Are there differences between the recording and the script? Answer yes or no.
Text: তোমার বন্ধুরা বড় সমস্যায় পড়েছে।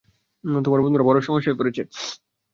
no